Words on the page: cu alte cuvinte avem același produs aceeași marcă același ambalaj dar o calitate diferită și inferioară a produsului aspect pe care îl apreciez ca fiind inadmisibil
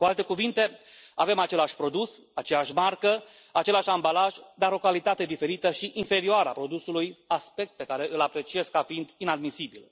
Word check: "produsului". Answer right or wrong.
right